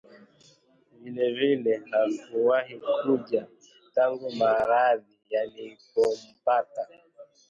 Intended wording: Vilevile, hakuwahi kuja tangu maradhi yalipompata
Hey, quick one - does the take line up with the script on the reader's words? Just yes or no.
yes